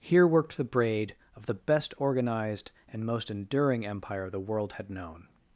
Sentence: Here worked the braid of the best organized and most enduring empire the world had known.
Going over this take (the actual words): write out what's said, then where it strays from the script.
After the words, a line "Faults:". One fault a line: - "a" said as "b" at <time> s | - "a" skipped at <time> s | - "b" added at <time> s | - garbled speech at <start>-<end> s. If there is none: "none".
Here worked the braid of the best organized and most enduring empire the world had known.
Faults:
none